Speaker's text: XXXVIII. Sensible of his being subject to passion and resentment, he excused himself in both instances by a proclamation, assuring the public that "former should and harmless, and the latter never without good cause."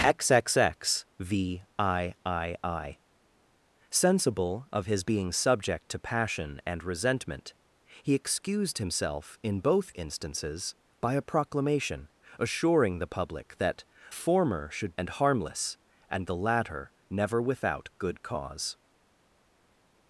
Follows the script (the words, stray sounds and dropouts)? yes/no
yes